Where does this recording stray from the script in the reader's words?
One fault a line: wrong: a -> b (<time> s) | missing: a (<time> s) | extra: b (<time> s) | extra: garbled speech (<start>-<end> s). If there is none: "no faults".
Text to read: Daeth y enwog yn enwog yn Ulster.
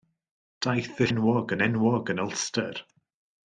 no faults